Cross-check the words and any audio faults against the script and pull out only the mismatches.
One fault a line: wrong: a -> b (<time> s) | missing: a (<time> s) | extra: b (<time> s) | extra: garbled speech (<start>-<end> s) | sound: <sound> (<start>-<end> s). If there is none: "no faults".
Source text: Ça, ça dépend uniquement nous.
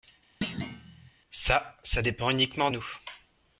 sound: thud (0.4-1.1 s)